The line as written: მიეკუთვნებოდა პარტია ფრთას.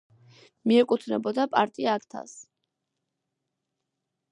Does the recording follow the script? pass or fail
pass